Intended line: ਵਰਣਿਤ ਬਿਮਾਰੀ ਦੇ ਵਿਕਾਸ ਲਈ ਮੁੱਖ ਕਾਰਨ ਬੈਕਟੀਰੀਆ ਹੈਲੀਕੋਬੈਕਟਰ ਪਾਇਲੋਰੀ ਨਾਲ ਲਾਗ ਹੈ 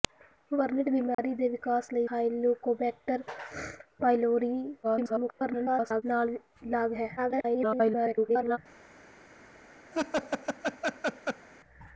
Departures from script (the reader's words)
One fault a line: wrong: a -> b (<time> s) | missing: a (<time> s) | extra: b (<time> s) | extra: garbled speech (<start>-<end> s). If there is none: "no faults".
missing: ਮੁੱਖ ਕਾਰਨ ਬੈਕਟੀਰੀਆ (2.1 s)
extra: garbled speech (4.8-6.0 s)
extra: garbled speech (7.2-8.6 s)